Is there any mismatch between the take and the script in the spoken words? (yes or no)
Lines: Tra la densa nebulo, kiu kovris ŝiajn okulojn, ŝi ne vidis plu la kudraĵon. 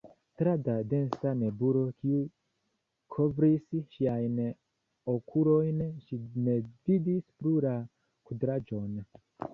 no